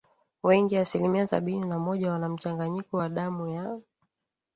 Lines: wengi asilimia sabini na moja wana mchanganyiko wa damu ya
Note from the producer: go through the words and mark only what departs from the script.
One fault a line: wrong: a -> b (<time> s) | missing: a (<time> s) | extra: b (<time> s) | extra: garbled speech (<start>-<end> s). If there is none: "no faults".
no faults